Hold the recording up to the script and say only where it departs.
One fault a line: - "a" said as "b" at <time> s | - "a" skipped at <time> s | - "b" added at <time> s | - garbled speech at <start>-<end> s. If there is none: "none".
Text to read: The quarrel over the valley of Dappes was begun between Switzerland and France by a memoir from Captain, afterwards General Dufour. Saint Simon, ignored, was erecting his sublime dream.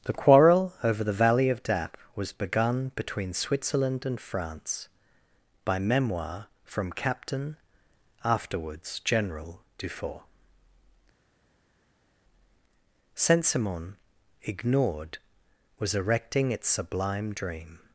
- "a" skipped at 5.8 s
- "his" said as "its" at 16.5 s